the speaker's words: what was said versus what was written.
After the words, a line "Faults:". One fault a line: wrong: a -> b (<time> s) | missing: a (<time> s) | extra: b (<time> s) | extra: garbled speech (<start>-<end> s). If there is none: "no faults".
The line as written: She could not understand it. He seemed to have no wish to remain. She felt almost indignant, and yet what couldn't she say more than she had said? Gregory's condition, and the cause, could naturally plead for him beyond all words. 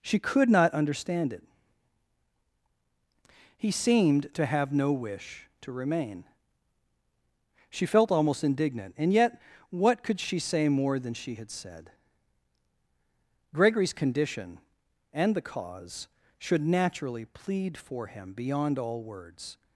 She could not understand it. He seemed to have no wish to remain. She felt almost indignant, and yet what could she say more than she had said? Gregory's condition, and the cause, should naturally plead for him beyond all words.
Faults:
wrong: couldn't -> could (10.0 s)
wrong: could -> should (16.4 s)